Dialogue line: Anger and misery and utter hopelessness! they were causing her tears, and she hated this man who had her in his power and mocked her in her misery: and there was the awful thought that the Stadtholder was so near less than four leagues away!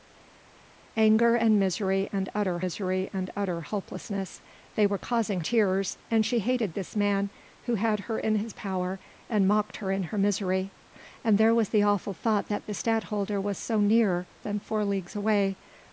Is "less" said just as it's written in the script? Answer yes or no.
no